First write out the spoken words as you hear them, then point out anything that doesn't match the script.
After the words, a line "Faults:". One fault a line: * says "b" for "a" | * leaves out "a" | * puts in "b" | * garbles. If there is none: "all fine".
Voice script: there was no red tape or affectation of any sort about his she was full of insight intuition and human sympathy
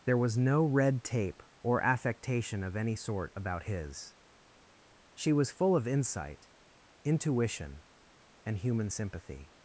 there was no red tape or affectation of any sort about his she was full of insight intuition and human sympathy
Faults:
all fine